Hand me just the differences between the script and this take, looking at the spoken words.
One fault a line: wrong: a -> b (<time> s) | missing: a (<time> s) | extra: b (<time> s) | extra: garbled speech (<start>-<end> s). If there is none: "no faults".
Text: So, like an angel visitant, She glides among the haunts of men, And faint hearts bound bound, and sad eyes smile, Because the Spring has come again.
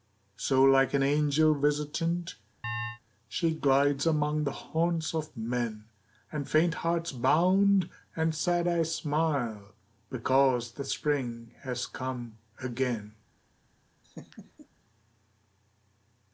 missing: bound (7.9 s)